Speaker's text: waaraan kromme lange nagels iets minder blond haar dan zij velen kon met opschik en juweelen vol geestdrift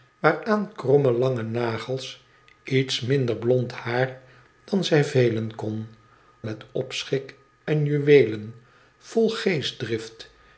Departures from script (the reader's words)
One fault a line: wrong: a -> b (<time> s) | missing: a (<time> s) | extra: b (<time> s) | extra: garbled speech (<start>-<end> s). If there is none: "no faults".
no faults